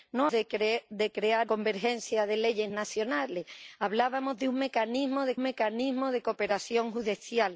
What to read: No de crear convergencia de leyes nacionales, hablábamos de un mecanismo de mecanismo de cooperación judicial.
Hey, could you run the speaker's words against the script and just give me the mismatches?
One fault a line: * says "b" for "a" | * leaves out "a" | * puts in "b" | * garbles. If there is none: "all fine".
all fine